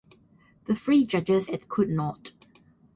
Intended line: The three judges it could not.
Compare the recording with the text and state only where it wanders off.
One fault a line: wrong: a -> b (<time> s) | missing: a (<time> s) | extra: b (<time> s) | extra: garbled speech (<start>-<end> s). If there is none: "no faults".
no faults